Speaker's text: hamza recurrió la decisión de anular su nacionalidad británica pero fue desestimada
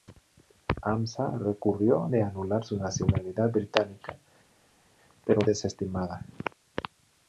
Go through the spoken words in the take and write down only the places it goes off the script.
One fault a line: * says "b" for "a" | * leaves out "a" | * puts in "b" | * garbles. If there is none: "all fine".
* leaves out "la decisión"
* leaves out "fue"